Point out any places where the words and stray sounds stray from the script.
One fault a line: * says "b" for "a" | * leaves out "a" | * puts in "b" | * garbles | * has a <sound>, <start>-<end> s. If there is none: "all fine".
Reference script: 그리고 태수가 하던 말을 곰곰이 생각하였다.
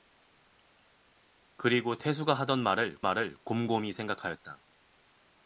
* puts in "말을"